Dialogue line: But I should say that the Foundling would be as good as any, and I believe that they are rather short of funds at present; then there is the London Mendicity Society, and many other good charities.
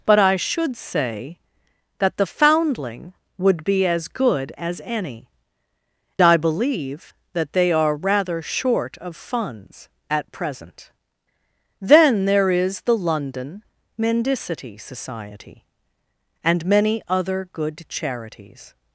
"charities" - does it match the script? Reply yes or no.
yes